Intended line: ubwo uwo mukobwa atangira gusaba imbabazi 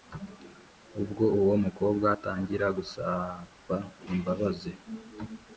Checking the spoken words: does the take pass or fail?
pass